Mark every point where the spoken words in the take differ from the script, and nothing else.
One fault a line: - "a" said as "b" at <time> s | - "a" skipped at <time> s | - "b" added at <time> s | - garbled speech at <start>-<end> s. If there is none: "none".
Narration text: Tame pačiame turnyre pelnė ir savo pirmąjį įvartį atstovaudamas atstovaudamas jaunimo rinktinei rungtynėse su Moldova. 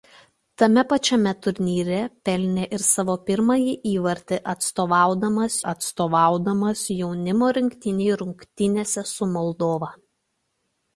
none